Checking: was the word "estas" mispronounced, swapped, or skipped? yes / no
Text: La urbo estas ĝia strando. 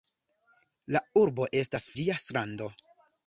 no